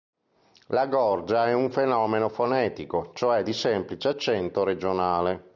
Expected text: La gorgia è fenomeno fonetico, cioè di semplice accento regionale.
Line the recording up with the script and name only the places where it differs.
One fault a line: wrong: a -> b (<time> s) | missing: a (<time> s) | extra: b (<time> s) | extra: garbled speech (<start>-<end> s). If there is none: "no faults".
extra: un (1.5 s)